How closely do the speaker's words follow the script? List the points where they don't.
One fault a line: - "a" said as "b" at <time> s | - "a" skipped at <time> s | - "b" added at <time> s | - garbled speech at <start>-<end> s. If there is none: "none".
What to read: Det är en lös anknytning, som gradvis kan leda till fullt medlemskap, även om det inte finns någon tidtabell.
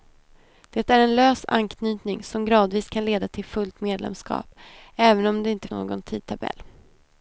- "finns" skipped at 5.7 s